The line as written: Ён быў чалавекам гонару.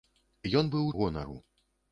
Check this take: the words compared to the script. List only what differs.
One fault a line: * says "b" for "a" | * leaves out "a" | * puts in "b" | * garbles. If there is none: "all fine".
* leaves out "чалавекам"